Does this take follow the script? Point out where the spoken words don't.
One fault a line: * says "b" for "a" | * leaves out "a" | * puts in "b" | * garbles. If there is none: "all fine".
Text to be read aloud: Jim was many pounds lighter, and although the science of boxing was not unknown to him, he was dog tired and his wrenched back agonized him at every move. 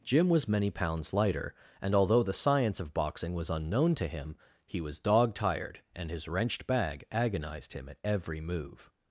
* leaves out "not"
* says "bag" for "back"